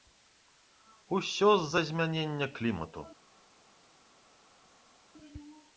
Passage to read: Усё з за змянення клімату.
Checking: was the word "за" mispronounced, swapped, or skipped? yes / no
no